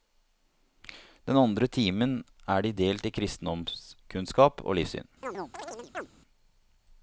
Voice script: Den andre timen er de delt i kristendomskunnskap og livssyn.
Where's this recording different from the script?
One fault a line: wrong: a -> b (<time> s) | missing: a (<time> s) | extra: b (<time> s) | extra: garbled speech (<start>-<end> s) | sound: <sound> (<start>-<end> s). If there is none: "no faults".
sound: chirp (5.2-6.1 s)